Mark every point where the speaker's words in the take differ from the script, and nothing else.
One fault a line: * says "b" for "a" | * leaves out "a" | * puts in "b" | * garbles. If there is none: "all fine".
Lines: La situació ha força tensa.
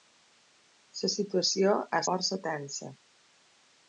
all fine